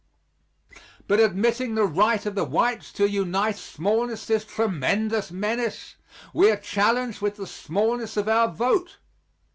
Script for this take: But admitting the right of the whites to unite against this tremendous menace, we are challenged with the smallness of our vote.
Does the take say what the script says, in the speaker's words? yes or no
no